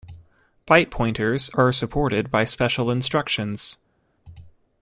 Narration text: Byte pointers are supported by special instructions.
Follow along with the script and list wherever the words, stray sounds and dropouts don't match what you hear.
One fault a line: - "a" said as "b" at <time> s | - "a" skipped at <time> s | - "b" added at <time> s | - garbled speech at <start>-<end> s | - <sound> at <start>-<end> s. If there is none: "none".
none